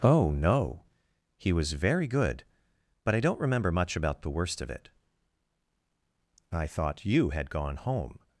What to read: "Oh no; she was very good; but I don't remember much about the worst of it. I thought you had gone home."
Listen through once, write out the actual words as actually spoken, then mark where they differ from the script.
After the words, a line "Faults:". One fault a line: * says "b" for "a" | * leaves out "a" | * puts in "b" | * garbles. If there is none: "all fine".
"Oh no; he was very good; but I don't remember much about the worst of it. I thought you had gone home."
Faults:
* says "he" for "she"